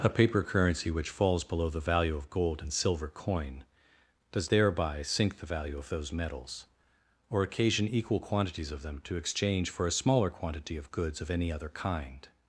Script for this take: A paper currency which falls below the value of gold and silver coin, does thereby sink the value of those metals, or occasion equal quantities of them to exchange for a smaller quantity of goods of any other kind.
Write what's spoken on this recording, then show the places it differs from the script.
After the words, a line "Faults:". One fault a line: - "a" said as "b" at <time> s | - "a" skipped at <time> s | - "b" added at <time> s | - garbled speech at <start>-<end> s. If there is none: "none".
A paper currency which falls below the value of gold and silver coin, does thereby sink the value of those metals, or occasion equal quantities of them to exchange for a smaller quantity of goods of any other kind.
Faults:
none